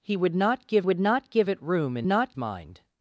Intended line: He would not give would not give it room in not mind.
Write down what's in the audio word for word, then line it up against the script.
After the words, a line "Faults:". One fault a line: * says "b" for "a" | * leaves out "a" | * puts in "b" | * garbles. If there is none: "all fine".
He would not give would not give it room in not mind.
Faults:
all fine